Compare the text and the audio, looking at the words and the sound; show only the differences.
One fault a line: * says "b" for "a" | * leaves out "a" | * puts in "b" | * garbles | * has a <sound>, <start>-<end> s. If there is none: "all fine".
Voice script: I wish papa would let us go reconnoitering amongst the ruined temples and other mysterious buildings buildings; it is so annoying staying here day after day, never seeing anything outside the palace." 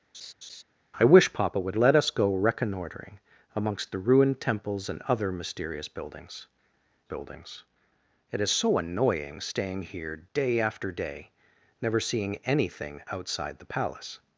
* has a laugh, 0.1-0.6 s